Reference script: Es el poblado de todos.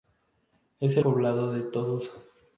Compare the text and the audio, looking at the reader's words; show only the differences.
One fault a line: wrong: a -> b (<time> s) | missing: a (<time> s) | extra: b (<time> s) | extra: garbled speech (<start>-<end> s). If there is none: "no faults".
no faults